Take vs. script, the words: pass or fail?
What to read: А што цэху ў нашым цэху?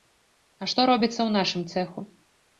fail